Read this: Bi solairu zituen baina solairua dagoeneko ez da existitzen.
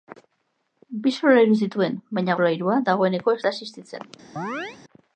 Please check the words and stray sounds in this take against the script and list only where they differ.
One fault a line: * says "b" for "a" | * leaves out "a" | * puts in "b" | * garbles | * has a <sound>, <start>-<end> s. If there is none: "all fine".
* has a chirp, 4.4-4.8 s